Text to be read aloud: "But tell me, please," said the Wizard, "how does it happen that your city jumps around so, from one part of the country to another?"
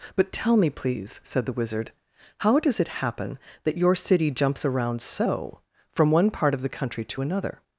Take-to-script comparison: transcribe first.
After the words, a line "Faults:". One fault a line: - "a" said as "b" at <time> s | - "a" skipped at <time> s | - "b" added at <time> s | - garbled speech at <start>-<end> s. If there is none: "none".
"But tell me, please," said the Wizard, "how does it happen that your city jumps around so, from one part of the country to another?"
Faults:
none